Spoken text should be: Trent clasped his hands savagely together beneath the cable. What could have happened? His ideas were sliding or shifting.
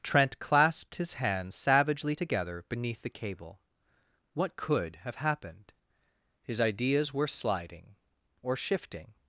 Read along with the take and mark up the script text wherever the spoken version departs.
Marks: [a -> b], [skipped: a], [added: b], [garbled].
Trent clasped his hands savagely together beneath the cable. What could have happened? His ideas were sliding or shifting.